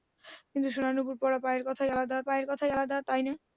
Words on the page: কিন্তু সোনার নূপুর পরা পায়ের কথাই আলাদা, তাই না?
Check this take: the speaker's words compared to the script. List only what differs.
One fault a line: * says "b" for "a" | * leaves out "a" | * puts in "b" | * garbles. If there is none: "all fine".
* puts in "পায়ের কথাই আলাদা"